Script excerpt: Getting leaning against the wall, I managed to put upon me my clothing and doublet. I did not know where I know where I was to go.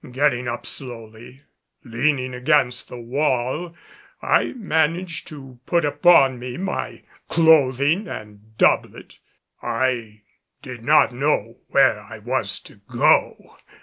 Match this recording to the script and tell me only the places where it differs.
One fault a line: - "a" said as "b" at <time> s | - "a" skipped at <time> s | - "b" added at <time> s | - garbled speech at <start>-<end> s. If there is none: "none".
- "up slowly" added at 0.5 s
- "know where I" skipped at 12.2 s